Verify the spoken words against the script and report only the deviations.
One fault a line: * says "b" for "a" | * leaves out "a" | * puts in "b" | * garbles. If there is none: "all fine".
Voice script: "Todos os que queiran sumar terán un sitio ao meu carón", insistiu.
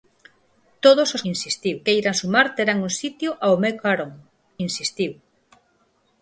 * says "insistiu" for "que"